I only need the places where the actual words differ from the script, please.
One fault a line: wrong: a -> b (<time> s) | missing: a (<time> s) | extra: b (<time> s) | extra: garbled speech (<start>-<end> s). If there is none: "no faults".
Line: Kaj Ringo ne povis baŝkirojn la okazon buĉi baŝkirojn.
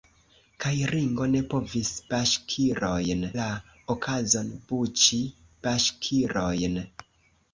no faults